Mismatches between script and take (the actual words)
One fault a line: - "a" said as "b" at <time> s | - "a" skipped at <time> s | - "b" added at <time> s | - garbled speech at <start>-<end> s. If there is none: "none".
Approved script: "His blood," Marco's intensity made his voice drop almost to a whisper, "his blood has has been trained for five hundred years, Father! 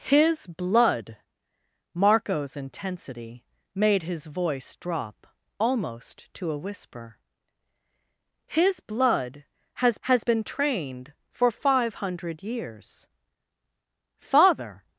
none